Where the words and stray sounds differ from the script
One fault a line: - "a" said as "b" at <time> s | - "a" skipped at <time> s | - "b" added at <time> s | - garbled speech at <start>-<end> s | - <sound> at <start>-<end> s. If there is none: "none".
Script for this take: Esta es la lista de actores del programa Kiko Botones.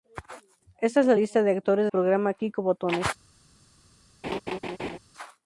- "del" skipped at 1.9 s
- laugh at 4.2-5.0 s